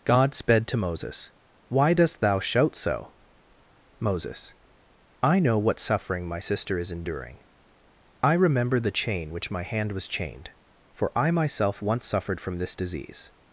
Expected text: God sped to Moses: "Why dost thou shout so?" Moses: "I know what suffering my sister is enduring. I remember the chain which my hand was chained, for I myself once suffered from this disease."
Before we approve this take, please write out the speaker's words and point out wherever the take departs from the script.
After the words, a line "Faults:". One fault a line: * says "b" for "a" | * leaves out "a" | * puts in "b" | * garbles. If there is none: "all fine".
God sped to Moses: "Why dost thou shout so?" Moses: "I know what suffering my sister is enduring. I remember the chain which my hand was chained, for I myself once suffered from this disease."
Faults:
all fine